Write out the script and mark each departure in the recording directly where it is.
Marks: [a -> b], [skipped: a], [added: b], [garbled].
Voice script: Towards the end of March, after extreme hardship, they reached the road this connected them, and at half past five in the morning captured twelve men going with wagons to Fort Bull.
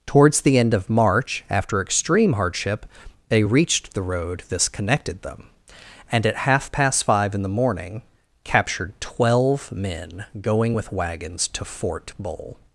Towards the end of March, after extreme hardship, they reached the road this connected them, and at half past five in the morning captured twelve men going with wagons to Fort Bull.